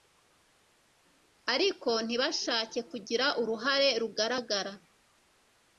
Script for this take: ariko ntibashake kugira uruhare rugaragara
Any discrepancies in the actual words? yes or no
no